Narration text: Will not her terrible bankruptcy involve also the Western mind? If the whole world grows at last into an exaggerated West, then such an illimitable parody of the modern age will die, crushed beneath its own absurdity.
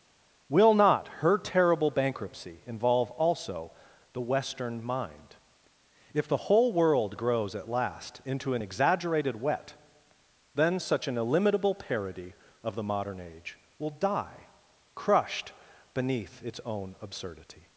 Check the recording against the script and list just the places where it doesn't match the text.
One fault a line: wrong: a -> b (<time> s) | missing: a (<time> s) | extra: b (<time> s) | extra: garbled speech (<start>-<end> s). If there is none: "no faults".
wrong: West -> Wet (9.4 s)